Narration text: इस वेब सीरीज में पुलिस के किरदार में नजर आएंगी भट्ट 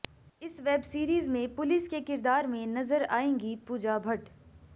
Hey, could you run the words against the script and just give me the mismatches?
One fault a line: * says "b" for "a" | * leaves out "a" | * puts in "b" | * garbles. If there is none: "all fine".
* puts in "पूजा"